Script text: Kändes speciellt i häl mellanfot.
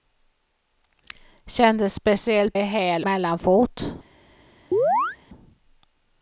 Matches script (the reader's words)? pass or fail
pass